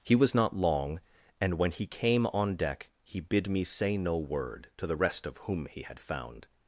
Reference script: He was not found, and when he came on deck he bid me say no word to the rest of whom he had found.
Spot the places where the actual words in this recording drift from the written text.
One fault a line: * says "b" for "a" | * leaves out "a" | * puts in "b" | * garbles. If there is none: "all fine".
* says "long" for "found"